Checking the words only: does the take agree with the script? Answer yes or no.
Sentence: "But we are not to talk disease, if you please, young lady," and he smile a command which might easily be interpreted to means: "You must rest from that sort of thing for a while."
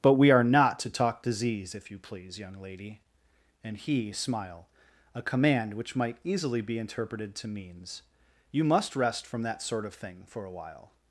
yes